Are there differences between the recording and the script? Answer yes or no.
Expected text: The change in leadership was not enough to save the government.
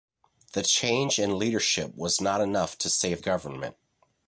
yes